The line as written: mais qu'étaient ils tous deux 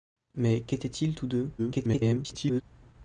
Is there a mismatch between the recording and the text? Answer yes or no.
yes